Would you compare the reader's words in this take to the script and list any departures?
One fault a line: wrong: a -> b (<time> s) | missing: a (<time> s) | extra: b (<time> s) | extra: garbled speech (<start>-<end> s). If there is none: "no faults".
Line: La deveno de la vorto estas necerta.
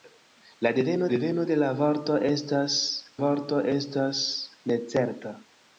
extra: deveno (1.1 s)
extra: vorto estas (3.2 s)